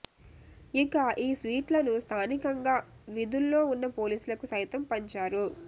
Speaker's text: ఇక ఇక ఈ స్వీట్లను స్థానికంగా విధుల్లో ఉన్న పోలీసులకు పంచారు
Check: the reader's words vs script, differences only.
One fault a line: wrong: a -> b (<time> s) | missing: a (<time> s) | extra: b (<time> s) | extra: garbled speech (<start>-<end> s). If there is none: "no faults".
missing: ఇక (0.9 s)
extra: సైతం (4.5 s)